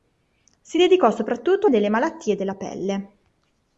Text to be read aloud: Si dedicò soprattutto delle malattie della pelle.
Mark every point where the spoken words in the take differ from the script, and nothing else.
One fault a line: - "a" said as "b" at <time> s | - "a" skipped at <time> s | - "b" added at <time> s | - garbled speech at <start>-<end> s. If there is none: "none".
none